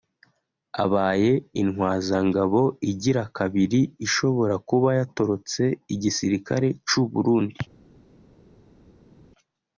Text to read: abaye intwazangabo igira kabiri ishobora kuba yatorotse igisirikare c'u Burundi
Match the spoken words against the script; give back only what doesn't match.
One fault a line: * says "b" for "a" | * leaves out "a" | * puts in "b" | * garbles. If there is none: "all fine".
all fine